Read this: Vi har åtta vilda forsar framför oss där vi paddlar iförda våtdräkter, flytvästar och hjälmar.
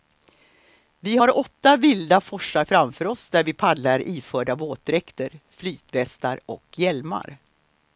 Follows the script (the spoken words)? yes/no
yes